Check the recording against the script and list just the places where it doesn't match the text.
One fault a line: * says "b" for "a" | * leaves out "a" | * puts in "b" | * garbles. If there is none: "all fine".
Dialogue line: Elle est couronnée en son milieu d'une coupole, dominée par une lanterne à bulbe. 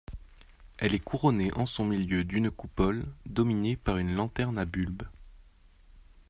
all fine